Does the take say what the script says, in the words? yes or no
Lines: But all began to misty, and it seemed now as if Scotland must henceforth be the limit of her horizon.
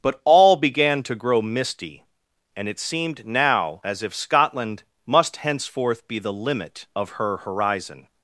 no